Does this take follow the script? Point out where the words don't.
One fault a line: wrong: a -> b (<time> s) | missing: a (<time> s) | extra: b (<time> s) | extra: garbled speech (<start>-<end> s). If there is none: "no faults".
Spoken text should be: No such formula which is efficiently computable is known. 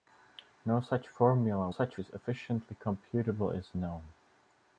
wrong: which -> such (1.7 s)